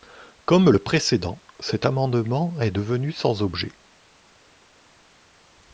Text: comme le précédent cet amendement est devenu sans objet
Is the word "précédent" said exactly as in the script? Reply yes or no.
yes